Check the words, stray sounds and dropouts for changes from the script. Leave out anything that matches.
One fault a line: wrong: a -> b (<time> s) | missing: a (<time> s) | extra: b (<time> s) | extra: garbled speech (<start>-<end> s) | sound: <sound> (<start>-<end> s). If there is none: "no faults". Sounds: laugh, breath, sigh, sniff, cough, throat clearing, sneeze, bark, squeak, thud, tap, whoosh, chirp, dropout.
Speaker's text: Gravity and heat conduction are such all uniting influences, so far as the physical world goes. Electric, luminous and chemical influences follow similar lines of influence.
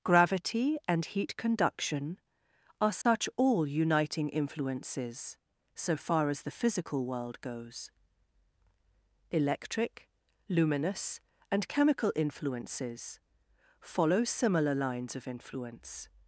sound: dropout (3.0-3.1 s)